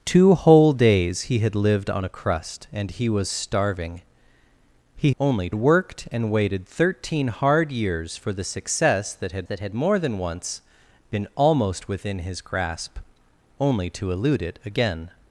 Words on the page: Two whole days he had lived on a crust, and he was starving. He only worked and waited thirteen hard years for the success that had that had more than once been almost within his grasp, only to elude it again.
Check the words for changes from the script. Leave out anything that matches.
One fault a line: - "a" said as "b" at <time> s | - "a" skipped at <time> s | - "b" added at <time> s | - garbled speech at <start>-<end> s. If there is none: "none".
none